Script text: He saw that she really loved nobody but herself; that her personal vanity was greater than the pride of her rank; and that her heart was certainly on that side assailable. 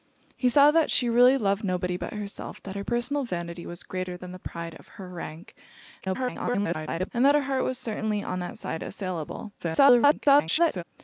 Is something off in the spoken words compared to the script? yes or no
yes